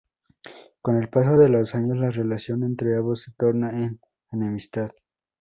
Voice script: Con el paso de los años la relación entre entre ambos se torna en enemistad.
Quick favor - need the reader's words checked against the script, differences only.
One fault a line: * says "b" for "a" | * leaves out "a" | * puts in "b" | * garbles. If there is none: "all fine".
* leaves out "entre"